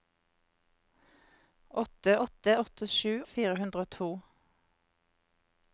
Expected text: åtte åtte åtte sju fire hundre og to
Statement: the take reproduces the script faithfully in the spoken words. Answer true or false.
true